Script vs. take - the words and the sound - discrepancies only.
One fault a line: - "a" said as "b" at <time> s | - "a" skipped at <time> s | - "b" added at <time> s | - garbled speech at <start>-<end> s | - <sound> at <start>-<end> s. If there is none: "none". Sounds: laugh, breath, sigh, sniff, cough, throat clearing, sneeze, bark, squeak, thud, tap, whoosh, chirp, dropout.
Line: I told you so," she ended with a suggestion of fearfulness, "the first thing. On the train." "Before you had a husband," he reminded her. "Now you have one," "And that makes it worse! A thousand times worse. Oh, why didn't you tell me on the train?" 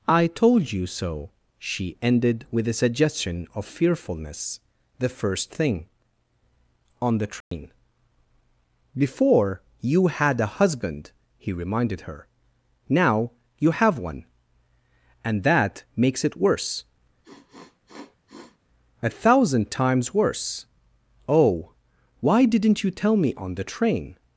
- dropout at 7.4-7.5 s
- sniff at 17.2-18.6 s